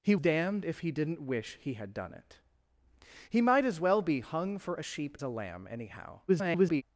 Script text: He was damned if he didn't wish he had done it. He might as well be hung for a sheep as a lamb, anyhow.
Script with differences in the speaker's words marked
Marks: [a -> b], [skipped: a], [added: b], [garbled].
He [skipped: was] damned if he didn't wish he had done it. He might as well be hung for a sheep [skipped: as] a lamb, anyhow. [garbled]